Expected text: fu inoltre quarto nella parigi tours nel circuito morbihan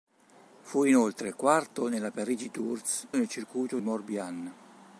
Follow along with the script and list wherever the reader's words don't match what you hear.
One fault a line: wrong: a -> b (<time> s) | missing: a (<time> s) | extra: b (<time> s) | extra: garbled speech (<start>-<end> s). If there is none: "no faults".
no faults